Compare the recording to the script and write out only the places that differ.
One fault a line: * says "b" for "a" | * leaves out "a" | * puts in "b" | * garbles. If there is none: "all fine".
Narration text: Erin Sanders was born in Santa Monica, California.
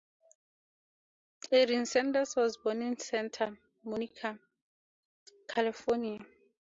all fine